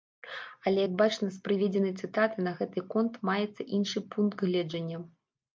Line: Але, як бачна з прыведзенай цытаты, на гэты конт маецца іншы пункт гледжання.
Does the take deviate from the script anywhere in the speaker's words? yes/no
no